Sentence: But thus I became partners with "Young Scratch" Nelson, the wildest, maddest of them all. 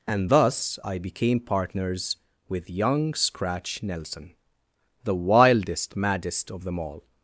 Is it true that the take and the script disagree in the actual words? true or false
true